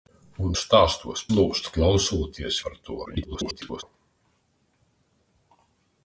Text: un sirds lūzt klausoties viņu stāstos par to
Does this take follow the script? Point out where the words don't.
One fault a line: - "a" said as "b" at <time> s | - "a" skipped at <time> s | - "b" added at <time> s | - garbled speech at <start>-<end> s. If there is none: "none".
- "sirds" said as "stāstos" at 0.6 s
- "viņu stāstos" skipped at 2.6 s
- garbled speech at 3.1-3.8 s